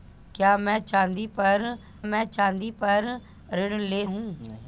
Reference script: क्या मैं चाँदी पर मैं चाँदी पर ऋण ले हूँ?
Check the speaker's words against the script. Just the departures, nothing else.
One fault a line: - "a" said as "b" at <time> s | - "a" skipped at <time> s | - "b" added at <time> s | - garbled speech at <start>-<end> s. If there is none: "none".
none